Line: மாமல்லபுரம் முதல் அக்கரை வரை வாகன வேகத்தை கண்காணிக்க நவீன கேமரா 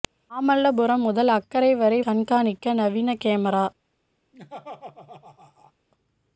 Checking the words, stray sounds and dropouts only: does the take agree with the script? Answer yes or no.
no